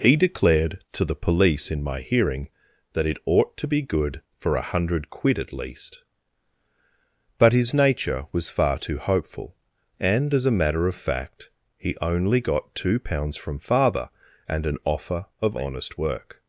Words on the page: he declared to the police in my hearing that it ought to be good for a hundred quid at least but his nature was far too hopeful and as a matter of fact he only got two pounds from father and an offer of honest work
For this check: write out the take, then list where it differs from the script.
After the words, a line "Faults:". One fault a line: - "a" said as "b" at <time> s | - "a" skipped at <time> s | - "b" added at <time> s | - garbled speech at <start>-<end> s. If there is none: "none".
he declared to the police in my hearing that it ought to be good for a hundred quid at least but his nature was far too hopeful and as a matter of fact he only got two pounds from father and an offer of honest work
Faults:
none